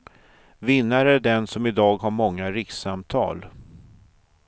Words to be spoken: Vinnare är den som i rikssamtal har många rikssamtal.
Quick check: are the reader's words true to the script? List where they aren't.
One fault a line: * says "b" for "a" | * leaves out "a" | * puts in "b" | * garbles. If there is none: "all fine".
* says "dag" for "rikssamtal"